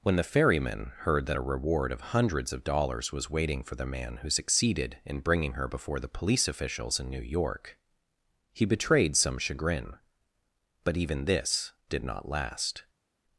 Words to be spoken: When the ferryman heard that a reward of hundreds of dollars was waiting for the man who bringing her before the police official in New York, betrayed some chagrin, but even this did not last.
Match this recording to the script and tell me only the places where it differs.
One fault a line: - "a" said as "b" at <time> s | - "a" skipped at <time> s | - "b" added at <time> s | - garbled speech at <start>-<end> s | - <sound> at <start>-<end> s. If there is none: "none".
- "succeeded in" added at 4.3 s
- "official" said as "officials" at 6.5 s
- "he" added at 8.5 s